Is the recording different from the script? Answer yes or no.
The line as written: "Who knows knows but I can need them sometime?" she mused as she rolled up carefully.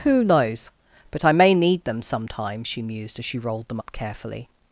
yes